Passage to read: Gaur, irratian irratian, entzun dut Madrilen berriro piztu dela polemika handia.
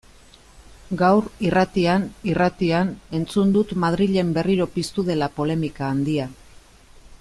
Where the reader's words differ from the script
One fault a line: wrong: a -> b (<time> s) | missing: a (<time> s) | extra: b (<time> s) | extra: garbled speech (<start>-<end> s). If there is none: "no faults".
no faults